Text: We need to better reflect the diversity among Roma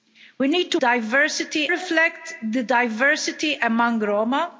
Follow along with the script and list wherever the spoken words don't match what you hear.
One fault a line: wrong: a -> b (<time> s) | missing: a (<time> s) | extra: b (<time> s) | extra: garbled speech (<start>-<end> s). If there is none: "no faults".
wrong: better -> diversity (0.8 s)